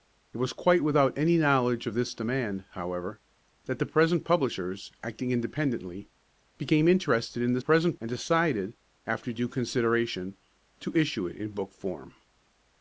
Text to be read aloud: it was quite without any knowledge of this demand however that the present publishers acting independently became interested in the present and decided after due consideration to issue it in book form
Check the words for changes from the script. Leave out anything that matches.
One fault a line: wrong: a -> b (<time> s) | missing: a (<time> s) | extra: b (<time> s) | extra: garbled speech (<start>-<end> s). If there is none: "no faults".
no faults